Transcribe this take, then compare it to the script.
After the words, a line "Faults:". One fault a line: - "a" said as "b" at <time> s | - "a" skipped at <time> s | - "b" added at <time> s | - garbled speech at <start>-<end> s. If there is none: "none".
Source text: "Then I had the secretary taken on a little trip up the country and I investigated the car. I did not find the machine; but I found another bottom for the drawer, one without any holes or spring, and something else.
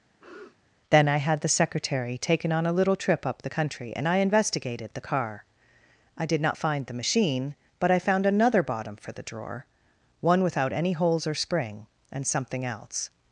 "Then I had the secretary taken on a little trip up the country and I investigated the car. I did not find the machine; but I found another bottom for the drawer, one without any holes or spring, and something else.
Faults:
none